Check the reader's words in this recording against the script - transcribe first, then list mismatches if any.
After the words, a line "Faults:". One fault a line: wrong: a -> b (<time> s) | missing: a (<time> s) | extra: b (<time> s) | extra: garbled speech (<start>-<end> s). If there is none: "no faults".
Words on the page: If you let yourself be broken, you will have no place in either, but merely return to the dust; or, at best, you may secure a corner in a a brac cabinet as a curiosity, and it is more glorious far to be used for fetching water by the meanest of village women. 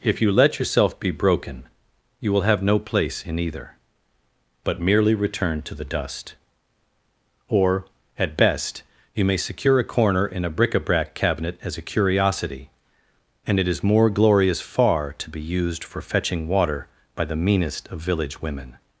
If you let yourself be broken, you will have no place in either, but merely return to the dust; or, at best, you may secure a corner in a bric a brac cabinet as a curiosity, and it is more glorious far to be used for fetching water by the meanest of village women.
Faults:
extra: bric (10.5 s)